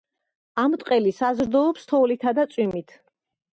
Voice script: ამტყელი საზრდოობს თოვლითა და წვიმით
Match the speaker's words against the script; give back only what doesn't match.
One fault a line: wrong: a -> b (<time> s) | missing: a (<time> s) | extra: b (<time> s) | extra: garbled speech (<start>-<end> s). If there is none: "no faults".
no faults